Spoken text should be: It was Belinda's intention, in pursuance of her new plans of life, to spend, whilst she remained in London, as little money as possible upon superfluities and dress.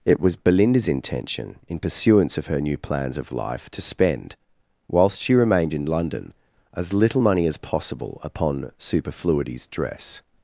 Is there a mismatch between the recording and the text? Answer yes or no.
yes